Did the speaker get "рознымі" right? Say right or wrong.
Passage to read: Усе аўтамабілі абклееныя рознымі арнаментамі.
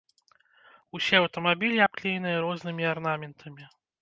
right